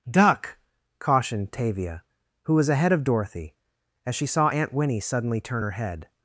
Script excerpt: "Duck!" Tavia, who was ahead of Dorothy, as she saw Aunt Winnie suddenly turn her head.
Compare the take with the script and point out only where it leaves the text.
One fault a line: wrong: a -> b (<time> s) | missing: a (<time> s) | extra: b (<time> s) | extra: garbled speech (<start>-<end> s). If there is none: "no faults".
extra: cautioned (1.0 s)